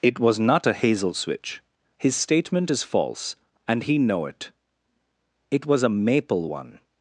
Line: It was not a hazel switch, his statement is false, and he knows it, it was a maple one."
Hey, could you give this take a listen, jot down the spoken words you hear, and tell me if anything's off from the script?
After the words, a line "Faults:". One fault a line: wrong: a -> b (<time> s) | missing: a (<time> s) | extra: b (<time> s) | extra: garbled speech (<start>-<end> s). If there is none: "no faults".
It was not a hazel switch, his statement is false, and he know it, it was a maple one."
Faults:
wrong: knows -> know (4.0 s)